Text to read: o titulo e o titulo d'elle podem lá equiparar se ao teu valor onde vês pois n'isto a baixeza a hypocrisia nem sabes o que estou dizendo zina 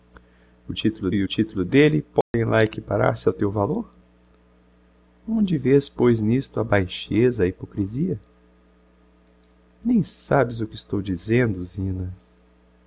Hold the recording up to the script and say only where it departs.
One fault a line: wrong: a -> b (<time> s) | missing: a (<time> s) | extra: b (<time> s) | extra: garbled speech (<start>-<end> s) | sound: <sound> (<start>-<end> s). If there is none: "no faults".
sound: dropout (2.2-2.3 s)